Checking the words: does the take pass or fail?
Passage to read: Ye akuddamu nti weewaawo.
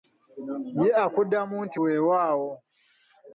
pass